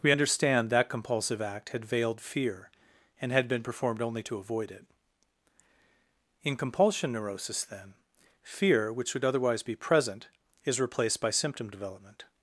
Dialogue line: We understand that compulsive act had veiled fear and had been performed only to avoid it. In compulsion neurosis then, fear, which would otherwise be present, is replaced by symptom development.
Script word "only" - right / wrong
right